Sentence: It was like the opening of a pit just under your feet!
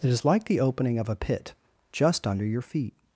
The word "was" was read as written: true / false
false